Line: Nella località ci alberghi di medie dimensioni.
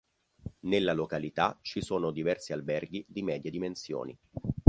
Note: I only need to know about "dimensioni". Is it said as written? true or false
true